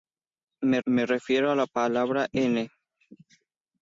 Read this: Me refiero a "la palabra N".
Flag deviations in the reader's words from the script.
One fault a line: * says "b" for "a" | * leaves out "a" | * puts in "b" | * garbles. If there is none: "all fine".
* puts in "me"